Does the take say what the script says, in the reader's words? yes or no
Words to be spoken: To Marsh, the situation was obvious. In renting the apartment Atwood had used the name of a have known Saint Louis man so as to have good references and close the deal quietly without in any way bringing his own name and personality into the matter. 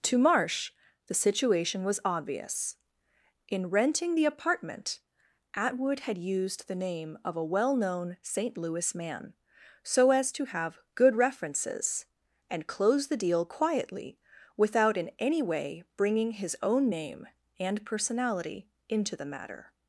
no